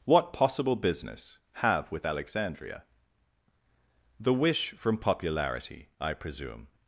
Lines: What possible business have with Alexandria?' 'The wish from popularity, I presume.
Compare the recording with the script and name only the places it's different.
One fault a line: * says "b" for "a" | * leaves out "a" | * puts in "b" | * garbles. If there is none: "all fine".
all fine